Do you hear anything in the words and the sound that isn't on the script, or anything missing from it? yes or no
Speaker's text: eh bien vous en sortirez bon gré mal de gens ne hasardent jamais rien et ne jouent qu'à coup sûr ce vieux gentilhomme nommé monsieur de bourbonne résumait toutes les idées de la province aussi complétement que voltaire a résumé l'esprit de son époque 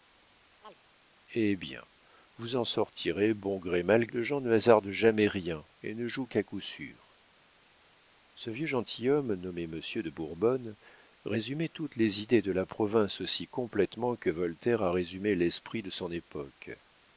yes